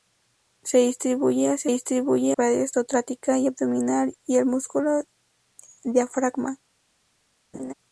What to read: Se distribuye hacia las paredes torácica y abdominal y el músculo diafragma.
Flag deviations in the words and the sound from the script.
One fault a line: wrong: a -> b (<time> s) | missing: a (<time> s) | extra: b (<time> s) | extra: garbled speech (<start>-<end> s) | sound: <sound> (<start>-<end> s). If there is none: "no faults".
wrong: las -> distribuye (1.6 s)
sound: laugh (7.5-7.7 s)